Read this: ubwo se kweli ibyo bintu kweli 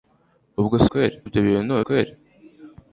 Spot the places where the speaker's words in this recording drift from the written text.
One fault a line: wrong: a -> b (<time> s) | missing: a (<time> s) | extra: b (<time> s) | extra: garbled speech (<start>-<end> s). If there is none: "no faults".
no faults